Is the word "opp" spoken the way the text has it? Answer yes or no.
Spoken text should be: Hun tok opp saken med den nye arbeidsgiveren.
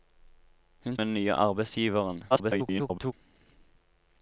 no